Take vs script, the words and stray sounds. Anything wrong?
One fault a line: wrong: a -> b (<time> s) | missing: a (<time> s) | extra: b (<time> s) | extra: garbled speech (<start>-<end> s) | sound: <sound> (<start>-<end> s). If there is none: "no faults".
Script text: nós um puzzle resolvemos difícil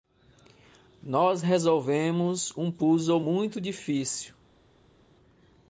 extra: resolvemos (1.4 s)
wrong: resolvemos -> muito (3.2 s)